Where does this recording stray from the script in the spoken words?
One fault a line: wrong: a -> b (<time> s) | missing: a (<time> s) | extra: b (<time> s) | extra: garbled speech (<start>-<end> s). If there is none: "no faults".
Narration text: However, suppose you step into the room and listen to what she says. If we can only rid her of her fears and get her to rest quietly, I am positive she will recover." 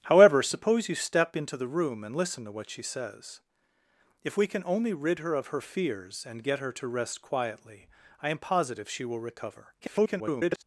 extra: garbled speech (9.8-10.6 s)